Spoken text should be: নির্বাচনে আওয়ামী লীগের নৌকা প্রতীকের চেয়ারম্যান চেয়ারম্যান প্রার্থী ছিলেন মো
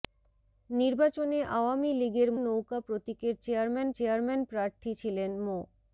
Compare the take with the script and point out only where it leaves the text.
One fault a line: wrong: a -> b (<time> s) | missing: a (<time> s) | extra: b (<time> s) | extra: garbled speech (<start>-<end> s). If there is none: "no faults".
no faults